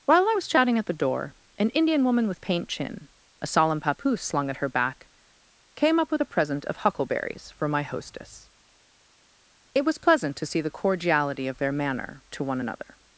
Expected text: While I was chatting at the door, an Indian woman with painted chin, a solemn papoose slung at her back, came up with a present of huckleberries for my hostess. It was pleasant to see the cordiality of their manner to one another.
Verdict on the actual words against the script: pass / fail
fail